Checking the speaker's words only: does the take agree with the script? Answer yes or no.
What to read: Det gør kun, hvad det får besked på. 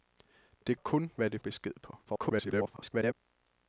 no